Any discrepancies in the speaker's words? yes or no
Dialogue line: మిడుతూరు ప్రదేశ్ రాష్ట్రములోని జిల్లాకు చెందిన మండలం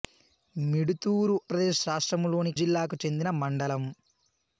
no